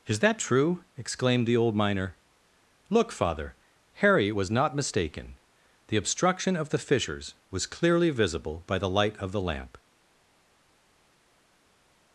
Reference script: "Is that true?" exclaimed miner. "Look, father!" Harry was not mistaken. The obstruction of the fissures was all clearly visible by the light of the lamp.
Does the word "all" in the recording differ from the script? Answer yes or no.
yes